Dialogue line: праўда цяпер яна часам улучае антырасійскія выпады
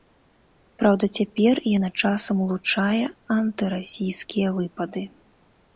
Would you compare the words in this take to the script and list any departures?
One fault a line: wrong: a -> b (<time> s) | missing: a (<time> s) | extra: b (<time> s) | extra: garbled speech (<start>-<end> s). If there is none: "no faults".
no faults